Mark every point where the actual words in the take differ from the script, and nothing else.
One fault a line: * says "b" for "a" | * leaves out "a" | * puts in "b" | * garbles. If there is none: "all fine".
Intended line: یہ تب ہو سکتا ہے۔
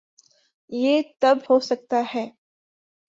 all fine